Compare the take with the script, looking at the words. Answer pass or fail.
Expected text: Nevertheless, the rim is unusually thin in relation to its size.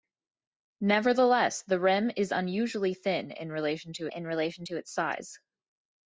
fail